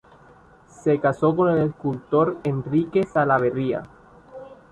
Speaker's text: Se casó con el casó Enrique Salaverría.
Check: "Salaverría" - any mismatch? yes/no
no